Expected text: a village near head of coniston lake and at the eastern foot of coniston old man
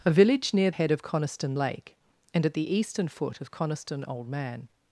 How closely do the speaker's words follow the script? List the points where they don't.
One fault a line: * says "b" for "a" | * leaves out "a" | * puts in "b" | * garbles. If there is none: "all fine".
all fine